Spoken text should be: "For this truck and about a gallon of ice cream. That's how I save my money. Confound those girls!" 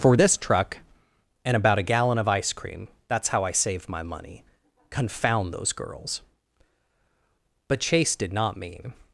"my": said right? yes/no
yes